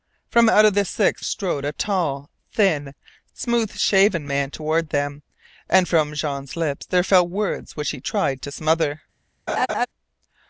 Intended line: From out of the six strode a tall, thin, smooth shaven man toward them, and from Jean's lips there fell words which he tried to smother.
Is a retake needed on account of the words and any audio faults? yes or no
yes